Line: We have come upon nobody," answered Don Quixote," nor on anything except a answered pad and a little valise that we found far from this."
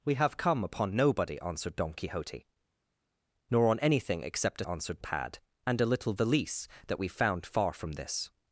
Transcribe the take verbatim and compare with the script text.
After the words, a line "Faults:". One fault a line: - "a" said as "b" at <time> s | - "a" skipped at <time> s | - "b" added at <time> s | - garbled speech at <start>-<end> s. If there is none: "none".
We have come upon nobody," answered Don Quixote," nor on anything except a answered pad and a little valise that we found far from this."
Faults:
none